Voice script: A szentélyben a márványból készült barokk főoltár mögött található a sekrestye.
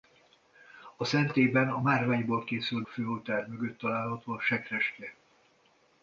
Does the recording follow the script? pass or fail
fail